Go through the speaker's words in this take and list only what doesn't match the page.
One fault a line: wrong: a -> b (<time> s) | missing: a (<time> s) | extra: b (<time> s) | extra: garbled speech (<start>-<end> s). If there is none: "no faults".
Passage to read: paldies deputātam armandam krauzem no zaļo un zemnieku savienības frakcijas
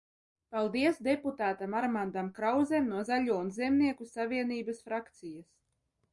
no faults